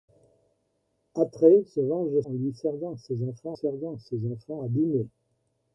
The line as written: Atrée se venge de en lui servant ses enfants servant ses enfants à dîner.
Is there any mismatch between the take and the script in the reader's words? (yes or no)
no